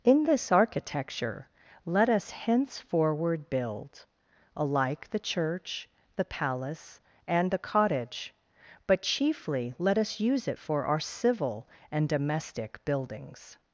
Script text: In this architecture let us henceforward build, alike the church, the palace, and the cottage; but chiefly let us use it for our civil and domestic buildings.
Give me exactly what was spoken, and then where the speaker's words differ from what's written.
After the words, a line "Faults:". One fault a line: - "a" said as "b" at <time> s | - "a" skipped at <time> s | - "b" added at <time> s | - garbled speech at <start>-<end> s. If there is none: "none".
In this architecture let us henceforward build, alike the church, the palace, and the cottage; but chiefly let us use it for our civil and domestic buildings.
Faults:
none